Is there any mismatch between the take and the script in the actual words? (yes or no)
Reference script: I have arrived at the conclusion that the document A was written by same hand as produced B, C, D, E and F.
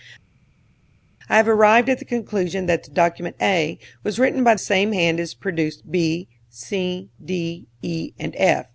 no